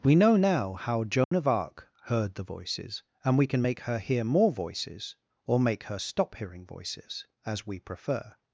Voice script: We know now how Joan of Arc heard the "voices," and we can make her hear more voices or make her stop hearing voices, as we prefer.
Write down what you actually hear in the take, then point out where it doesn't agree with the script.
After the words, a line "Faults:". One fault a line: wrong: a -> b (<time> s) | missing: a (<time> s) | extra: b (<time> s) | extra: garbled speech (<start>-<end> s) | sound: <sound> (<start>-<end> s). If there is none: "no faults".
We know now how Joan of Arc heard the "voices," and we can make her hear more voices or make her stop hearing voices, as we prefer.
Faults:
sound: dropout (1.2-1.3 s)